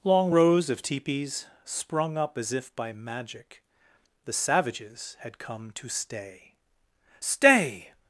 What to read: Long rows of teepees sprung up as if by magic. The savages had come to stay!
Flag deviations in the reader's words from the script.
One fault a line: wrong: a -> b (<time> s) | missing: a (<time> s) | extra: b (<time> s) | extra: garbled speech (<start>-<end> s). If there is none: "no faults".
extra: stay (7.2 s)